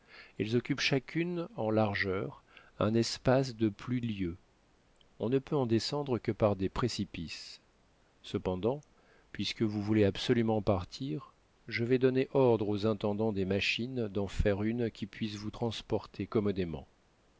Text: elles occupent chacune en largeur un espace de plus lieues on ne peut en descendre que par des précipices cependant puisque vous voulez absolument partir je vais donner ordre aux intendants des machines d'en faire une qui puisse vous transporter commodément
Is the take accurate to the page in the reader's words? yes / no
yes